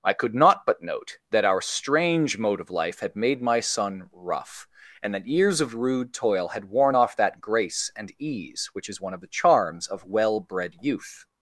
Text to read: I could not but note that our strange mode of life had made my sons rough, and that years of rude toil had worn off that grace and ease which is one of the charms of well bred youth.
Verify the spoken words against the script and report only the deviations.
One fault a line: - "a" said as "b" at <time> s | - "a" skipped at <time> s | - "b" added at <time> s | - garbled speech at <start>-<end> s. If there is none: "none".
- "sons" said as "son" at 3.6 s